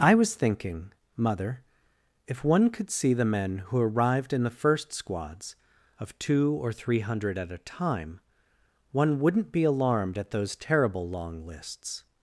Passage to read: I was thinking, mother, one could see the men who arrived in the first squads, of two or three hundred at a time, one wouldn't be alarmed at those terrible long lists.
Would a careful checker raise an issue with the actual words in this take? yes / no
yes